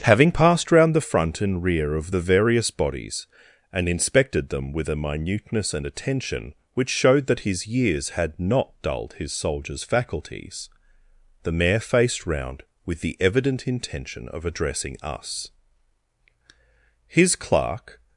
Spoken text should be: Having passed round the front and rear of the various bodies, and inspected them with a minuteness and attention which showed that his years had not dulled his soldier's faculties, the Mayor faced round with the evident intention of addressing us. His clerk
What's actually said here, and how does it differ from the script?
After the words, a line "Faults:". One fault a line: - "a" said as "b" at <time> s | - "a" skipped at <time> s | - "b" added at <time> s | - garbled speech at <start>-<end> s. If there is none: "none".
Having passed round the front and rear of the various bodies, and inspected them with a minuteness and attention which showed that his years had not dulled his soldier's faculties, the Mayor faced round with the evident intention of addressing us. His clerk
Faults:
none